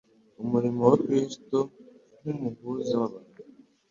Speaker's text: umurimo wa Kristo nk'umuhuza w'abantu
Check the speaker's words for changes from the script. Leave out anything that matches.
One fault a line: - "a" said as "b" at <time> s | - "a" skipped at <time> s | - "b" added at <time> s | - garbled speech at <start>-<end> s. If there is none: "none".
none